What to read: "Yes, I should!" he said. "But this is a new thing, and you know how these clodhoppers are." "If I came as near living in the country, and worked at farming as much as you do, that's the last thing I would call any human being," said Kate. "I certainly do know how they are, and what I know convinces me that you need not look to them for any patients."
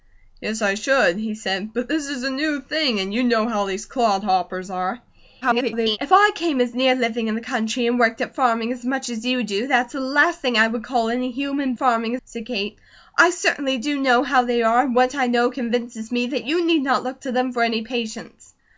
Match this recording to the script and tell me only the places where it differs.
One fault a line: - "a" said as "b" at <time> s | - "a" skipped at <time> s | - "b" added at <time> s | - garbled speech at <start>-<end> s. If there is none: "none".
- garbled speech at 5.4-6.0 s
- "being" said as "farming" at 11.8 s